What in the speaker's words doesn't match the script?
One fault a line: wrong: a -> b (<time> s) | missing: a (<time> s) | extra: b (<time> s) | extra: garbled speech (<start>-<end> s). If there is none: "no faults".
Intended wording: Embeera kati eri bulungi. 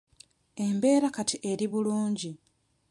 no faults